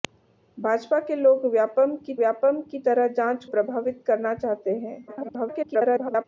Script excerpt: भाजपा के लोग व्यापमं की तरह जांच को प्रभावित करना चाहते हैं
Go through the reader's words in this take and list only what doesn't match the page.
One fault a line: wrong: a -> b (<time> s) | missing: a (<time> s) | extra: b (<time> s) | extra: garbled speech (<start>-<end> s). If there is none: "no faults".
extra: व्यापमं की (2.2 s)
missing: को (3.5 s)
extra: garbled speech (5.1-6.2 s)